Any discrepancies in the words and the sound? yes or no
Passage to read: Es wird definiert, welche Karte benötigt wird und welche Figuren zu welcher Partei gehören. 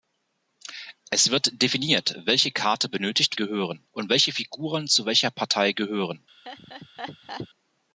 yes